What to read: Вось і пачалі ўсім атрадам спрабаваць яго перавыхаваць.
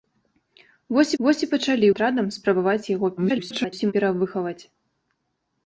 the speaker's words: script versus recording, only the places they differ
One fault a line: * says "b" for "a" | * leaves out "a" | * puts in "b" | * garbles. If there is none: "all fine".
* puts in "вось"
* leaves out "ўсім"
* garbles